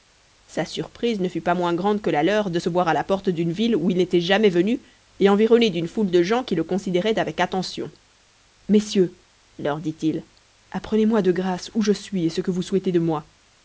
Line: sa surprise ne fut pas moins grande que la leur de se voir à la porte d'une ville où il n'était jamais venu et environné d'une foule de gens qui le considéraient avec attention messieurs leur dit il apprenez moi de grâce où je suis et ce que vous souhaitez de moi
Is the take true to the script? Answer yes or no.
yes